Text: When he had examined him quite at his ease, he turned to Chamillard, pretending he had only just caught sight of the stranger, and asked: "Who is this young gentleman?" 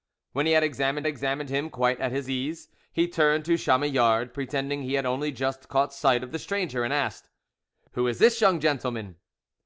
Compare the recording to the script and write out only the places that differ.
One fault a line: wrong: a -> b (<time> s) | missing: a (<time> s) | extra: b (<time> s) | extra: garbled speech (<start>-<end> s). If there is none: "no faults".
extra: examined (1.1 s)